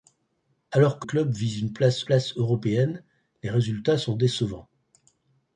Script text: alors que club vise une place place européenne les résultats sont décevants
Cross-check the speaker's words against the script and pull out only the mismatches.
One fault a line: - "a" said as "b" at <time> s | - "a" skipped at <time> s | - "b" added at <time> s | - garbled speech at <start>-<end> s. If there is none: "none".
none